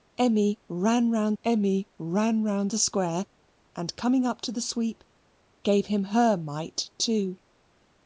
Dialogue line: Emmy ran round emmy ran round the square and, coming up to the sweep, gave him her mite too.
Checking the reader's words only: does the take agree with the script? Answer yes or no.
yes